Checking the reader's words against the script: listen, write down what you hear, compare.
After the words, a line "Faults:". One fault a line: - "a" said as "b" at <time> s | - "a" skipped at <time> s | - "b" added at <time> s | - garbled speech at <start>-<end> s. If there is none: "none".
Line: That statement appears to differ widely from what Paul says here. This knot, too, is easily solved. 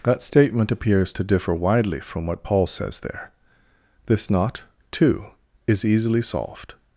That statement appears to differ widely from what Paul says there. This knot, too, is easily solved.
Faults:
- "here" said as "there" at 3.0 s